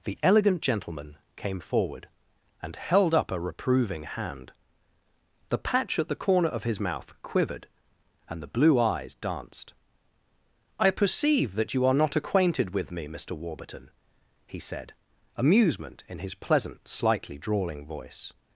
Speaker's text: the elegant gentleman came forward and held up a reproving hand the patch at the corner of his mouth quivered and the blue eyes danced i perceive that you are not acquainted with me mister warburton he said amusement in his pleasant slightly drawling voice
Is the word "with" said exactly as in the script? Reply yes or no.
yes